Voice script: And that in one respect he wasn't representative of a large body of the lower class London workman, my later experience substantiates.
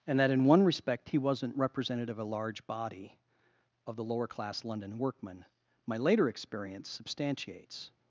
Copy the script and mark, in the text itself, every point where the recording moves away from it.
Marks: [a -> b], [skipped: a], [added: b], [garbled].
And that in one respect he wasn't representative of a large body of the lower class London workman, my later experience substantiates.